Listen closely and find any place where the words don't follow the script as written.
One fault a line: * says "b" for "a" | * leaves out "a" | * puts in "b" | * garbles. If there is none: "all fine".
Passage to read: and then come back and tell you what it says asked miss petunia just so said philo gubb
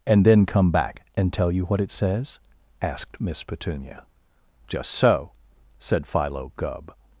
all fine